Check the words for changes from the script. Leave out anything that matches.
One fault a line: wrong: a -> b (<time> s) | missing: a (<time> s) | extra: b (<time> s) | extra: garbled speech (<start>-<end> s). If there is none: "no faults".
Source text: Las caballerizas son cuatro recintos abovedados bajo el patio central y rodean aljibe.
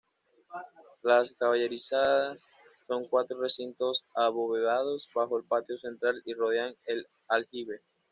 extra: el (6.9 s)